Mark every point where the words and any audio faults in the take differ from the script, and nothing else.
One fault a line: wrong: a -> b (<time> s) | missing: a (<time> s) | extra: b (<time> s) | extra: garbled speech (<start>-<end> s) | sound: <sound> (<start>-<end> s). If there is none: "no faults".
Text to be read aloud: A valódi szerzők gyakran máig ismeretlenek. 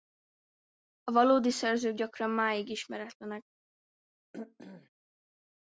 sound: throat clearing (4.3-4.9 s)